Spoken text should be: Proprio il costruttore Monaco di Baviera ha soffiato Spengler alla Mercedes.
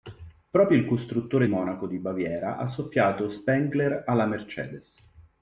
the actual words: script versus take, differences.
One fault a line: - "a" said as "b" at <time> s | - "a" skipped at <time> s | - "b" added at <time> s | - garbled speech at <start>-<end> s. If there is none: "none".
none